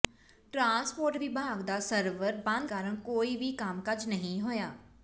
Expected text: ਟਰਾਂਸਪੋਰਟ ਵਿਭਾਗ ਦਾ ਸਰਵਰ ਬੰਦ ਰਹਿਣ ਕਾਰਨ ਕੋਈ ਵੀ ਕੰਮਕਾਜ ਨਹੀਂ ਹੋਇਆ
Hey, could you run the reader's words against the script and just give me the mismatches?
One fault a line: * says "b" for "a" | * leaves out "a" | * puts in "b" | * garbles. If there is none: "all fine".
* leaves out "ਰਹਿਣ"